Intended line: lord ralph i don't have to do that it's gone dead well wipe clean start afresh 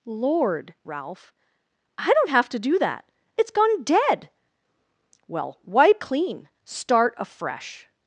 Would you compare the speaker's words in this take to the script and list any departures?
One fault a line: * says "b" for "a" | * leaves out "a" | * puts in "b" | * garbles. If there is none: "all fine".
all fine